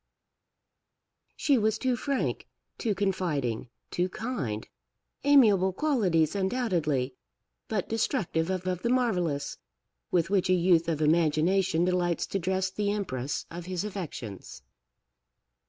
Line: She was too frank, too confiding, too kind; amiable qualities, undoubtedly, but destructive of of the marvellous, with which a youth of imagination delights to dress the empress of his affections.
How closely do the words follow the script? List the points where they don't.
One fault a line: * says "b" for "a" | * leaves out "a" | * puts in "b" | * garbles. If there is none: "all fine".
all fine